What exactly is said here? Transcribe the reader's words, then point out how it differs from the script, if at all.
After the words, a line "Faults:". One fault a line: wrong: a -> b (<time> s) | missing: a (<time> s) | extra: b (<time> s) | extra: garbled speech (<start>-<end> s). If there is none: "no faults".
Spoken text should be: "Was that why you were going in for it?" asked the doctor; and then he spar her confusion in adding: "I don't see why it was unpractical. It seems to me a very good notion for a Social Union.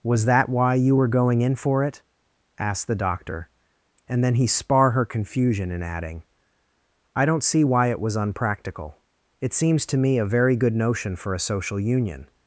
"Was that why you were going in for it?" asked the doctor; and then he spar her confusion in adding: "I don't see why it was unpractical. It seems to me a very good notion for a Social Union.
Faults:
no faults